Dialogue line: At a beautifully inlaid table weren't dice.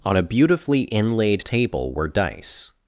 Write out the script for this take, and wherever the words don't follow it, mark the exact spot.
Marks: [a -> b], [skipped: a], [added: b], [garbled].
[At -> On] a beautifully inlaid table [weren't -> were] dice.